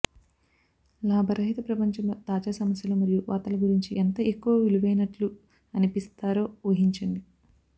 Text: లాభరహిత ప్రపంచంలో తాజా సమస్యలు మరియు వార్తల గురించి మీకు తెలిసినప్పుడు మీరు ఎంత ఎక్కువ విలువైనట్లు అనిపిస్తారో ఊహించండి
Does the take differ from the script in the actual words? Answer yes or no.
yes